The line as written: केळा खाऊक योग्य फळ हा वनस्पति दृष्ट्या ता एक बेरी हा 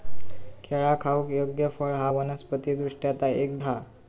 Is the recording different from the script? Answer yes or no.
yes